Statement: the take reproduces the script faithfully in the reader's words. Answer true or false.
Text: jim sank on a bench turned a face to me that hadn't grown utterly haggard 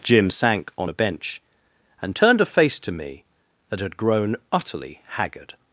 false